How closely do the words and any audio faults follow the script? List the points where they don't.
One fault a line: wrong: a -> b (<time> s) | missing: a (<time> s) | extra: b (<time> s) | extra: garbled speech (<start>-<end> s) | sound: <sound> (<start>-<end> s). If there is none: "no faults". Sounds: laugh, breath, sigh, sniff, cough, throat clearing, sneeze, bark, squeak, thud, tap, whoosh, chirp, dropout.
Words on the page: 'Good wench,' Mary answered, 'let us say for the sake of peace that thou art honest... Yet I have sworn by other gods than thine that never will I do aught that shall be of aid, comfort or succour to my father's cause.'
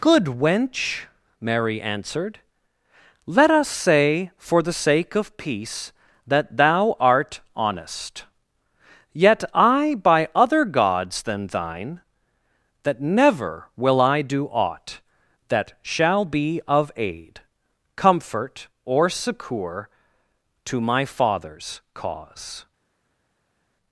missing: have sworn (9.9 s)